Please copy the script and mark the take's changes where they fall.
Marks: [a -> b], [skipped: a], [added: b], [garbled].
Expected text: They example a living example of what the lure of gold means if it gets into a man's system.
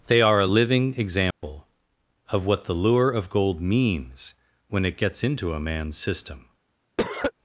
They [example -> are] a living example of what the lure of gold means [if -> when] it gets into a man's system.